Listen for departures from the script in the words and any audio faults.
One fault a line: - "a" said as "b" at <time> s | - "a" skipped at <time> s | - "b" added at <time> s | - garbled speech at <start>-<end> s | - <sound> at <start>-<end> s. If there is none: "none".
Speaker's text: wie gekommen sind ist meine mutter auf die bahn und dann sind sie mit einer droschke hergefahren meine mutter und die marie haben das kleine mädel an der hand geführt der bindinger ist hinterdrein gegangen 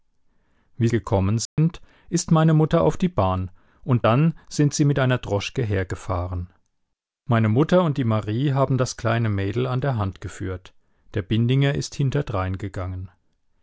- dropout at 1.5-1.6 s